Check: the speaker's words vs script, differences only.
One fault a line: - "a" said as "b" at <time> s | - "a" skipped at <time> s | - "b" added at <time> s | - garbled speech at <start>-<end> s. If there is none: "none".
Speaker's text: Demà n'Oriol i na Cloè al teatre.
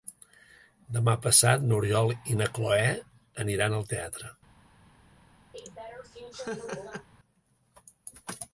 - "passat" added at 1.2 s
- "aniran" added at 3.5 s